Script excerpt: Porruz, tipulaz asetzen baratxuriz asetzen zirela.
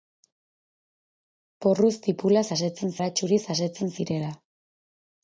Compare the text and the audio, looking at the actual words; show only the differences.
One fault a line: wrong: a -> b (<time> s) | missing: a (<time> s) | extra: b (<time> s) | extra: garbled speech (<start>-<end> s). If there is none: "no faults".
no faults